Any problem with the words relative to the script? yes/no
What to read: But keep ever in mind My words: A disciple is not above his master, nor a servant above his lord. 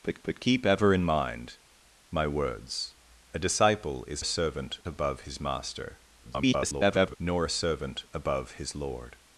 yes